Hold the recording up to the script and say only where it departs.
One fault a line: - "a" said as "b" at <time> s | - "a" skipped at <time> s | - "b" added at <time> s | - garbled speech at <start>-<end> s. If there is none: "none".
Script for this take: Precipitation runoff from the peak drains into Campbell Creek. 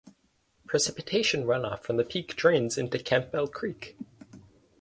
none